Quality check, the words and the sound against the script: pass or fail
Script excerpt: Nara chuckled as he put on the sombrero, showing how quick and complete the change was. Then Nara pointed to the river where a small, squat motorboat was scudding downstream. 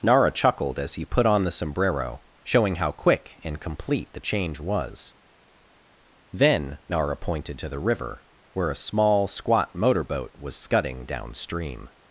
pass